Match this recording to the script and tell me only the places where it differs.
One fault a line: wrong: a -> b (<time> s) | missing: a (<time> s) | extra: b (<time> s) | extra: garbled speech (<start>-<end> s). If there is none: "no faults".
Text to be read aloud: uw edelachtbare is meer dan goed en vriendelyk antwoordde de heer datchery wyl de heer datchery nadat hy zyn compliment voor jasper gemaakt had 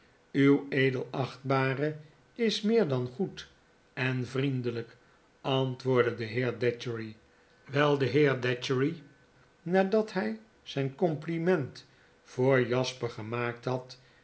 no faults